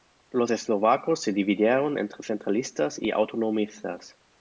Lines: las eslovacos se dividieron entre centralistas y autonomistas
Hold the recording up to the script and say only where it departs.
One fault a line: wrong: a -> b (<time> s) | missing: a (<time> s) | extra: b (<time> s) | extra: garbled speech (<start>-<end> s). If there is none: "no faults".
wrong: las -> los (0.3 s)